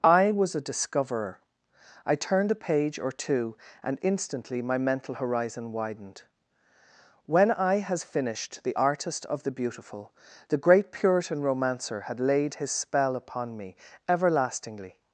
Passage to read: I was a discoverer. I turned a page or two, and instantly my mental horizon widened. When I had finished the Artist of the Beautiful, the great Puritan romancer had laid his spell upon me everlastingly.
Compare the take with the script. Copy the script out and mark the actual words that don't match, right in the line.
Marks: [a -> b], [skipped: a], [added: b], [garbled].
I was a discoverer. I turned a page or two, and instantly my mental horizon widened. When I [had -> has] finished the Artist of the Beautiful, the great Puritan romancer had laid his spell upon me everlastingly.